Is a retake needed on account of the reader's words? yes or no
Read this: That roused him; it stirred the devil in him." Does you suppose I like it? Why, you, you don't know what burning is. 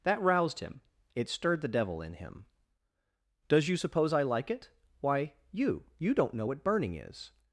no